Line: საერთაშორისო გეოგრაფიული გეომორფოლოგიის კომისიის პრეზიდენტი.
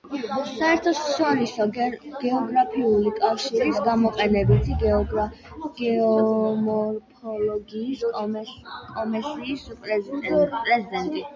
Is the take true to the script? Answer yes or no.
no